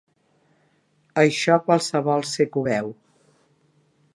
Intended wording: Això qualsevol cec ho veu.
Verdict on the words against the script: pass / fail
pass